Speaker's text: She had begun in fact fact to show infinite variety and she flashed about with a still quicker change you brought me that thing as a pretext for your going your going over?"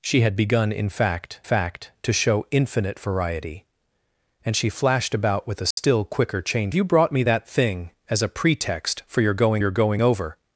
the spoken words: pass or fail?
pass